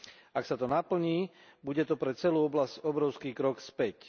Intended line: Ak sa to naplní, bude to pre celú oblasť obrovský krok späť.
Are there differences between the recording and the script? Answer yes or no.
no